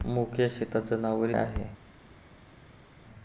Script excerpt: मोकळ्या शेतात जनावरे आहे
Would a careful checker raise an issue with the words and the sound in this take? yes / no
no